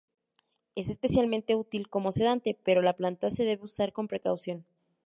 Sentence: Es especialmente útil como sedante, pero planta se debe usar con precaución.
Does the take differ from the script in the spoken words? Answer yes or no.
yes